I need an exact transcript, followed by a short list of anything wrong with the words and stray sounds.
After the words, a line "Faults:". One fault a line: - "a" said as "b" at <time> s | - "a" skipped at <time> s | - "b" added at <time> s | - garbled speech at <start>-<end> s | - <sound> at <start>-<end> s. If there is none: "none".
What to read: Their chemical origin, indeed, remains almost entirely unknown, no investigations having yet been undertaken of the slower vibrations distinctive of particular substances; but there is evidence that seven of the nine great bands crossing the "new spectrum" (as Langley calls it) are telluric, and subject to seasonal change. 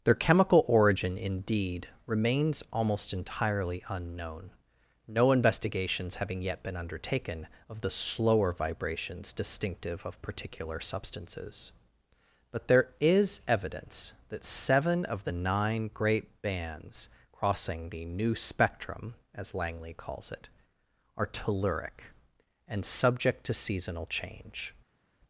Their chemical origin, indeed, remains almost entirely unknown, no investigations having yet been undertaken of the slower vibrations distinctive of particular substances; but there is evidence that seven of the nine great bands crossing the "new spectrum" (as Langley calls it) are telluric, and subject to seasonal change.
Faults:
none